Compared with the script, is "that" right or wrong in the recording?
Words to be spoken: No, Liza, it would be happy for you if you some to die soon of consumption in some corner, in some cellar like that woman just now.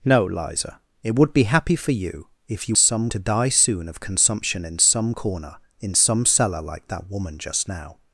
right